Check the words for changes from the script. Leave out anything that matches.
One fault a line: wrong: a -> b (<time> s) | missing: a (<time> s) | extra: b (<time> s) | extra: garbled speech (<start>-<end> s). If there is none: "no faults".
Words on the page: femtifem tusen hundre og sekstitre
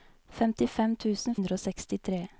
no faults